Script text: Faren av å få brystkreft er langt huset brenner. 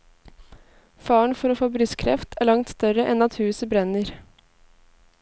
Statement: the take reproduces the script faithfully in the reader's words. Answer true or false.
false